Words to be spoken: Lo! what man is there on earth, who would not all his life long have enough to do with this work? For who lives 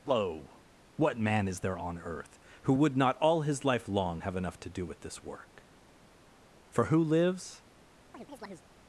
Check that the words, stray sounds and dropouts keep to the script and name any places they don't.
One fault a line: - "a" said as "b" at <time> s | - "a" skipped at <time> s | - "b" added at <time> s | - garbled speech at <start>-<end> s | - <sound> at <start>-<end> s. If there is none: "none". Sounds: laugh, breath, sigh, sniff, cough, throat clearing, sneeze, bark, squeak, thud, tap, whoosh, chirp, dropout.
- chirp at 8.1-8.7 s